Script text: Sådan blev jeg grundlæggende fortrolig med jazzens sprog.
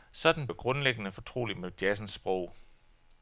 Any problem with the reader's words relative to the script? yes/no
yes